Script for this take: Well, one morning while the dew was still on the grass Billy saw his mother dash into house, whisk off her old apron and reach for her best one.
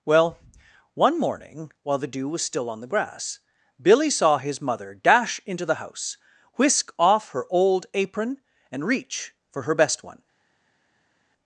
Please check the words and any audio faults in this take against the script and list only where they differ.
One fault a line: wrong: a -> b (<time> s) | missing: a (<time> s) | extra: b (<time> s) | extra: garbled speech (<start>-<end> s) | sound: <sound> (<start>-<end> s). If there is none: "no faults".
extra: the (5.7 s)